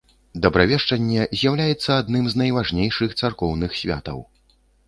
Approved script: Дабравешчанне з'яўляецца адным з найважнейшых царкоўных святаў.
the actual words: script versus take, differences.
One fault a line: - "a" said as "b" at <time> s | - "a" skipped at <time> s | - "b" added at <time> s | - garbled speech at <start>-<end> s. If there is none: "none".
none